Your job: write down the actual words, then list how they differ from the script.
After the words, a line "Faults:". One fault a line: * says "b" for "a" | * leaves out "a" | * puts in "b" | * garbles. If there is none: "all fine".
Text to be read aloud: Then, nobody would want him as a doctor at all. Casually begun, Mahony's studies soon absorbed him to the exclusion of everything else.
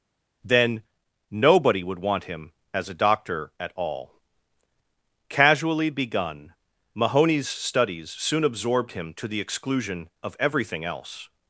Then, nobody would want him as a doctor at all. Casually begun, Mahony's studies soon absorbed him to the exclusion of everything else.
Faults:
all fine